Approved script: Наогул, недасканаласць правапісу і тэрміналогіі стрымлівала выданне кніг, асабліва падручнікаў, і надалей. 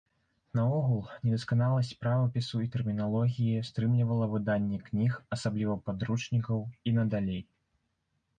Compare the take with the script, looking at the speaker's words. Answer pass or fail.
pass